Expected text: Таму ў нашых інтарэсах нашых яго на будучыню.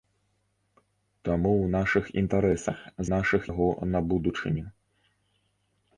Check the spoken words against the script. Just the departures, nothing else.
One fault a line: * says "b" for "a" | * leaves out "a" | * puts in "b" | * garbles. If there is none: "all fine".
all fine